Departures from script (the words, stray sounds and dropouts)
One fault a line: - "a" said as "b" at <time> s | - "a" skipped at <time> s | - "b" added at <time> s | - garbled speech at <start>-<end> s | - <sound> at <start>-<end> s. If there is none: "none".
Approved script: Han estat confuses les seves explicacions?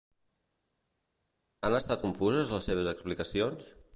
none